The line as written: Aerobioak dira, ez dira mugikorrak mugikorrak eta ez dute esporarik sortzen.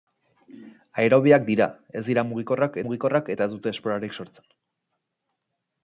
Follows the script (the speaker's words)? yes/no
yes